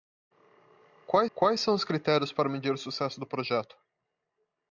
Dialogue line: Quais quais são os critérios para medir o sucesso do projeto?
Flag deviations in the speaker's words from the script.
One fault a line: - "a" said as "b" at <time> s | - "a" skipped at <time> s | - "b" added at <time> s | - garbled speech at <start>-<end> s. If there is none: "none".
none